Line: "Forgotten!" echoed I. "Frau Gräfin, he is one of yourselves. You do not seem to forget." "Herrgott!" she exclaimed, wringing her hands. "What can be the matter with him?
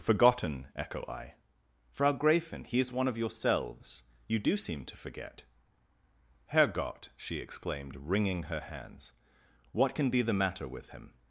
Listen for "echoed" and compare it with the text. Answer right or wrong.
wrong